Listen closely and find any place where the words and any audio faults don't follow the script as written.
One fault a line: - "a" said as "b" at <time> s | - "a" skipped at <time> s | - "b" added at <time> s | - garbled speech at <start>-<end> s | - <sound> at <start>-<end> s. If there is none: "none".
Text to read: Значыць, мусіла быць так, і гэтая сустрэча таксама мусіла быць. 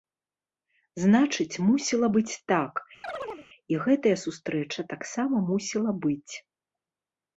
- chirp at 3.0-3.5 s